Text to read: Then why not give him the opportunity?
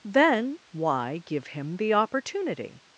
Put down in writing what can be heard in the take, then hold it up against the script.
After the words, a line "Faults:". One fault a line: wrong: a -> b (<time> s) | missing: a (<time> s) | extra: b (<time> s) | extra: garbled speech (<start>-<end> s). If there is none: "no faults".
Then why give him the opportunity?
Faults:
missing: not (1.2 s)